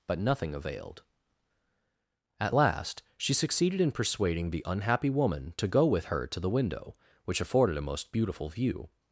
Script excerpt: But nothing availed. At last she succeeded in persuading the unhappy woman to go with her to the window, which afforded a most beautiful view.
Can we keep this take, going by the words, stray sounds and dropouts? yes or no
yes